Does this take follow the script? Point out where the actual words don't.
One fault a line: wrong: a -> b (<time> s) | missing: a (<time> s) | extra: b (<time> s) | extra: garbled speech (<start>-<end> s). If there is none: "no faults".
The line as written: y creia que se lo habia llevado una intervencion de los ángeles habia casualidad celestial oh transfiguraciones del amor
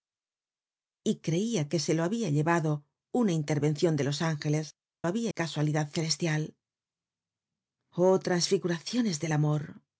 no faults